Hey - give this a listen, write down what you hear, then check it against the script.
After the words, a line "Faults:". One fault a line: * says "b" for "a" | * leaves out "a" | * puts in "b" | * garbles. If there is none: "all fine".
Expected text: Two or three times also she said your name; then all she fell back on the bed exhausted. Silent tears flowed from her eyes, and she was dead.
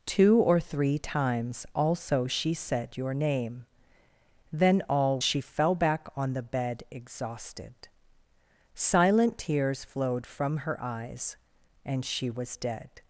Two or three times also she said your name; then all she fell back on the bed exhausted. Silent tears flowed from her eyes, and she was dead.
Faults:
all fine